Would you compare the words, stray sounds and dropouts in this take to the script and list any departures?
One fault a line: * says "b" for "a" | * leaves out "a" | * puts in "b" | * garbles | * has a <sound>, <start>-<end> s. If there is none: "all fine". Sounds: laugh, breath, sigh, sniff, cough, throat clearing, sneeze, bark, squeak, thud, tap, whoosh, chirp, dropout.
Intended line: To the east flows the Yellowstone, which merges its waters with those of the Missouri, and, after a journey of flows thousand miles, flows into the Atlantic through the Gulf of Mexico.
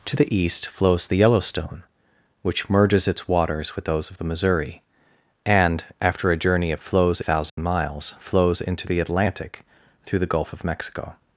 * has a dropout, 7.5-7.6 s